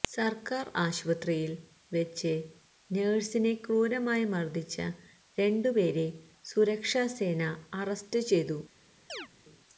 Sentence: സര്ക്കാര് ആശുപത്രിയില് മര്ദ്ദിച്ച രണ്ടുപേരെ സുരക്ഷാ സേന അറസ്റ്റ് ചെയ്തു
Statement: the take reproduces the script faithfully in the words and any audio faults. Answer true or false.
false